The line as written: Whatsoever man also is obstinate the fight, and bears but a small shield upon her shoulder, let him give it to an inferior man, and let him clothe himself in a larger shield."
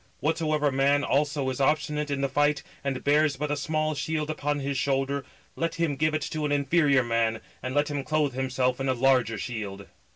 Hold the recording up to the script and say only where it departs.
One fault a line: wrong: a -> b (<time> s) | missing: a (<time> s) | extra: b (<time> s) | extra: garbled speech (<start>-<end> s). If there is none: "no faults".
extra: in (2.1 s)
wrong: her -> his (4.6 s)